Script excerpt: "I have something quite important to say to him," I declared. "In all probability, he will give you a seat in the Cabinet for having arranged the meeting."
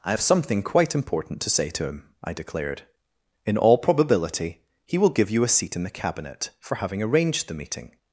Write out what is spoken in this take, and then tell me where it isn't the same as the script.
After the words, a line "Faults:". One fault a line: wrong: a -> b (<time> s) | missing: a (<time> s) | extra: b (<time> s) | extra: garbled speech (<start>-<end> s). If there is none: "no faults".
"I have something quite important to say to him," I declared. "In all probability, he will give you a seat in the Cabinet for having arranged the meeting."
Faults:
no faults